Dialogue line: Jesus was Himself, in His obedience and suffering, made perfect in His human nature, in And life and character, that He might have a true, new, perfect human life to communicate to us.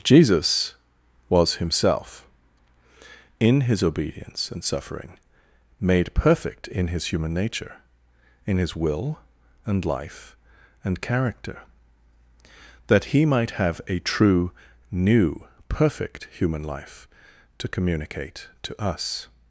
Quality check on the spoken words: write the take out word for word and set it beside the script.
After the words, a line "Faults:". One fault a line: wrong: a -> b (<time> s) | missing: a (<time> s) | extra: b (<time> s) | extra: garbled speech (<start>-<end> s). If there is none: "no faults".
Jesus was Himself, in His obedience and suffering, made perfect in His human nature, in His will and life and character, that He might have a true, new, perfect human life to communicate to us.
Faults:
extra: His will (8.6 s)